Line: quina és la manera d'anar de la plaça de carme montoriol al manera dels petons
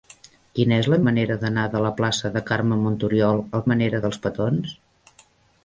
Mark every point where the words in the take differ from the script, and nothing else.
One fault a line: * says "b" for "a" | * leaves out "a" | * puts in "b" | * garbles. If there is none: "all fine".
all fine